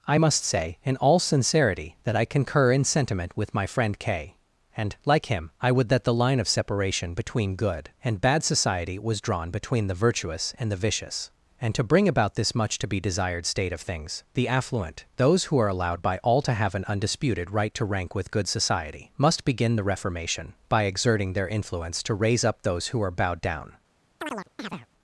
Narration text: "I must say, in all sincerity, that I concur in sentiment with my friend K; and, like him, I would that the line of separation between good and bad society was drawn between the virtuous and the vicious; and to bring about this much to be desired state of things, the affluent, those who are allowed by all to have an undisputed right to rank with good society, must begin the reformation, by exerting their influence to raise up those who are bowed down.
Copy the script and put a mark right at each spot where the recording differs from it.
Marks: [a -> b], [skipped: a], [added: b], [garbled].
"I must say, in all sincerity, that I concur in sentiment with my friend K; and, like him, I would that the line of separation between good and bad society was drawn between the virtuous and the vicious; and to bring about this much to be desired state of things, the affluent, those who are allowed by all to have an undisputed right to rank with good society, must begin the reformation, by exerting their influence to raise up those who are bowed down.